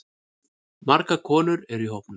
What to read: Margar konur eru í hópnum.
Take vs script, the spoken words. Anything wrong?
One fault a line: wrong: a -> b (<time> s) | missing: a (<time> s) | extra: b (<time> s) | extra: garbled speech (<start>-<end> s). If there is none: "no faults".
no faults